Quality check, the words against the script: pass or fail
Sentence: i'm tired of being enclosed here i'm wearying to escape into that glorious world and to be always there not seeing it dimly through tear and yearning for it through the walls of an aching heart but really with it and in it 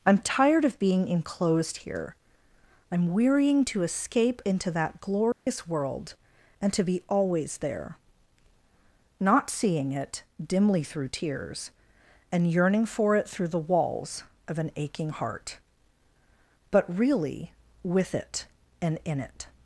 fail